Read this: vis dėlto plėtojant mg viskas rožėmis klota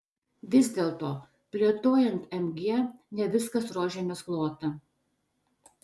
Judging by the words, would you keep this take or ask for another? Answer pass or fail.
fail